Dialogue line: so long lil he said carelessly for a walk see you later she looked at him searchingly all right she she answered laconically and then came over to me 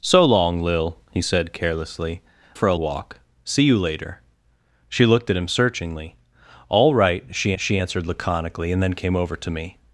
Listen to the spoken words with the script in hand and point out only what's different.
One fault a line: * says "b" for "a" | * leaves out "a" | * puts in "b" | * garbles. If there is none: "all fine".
all fine